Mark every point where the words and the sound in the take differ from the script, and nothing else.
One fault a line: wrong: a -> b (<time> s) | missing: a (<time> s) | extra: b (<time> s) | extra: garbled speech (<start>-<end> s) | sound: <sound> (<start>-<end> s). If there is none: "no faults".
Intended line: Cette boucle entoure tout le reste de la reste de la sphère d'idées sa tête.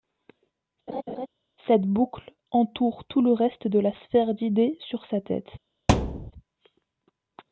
sound: laugh (0.9-1.3 s)
missing: reste de la (3.9 s)
extra: sur (4.9 s)
sound: thud (5.9-6.3 s)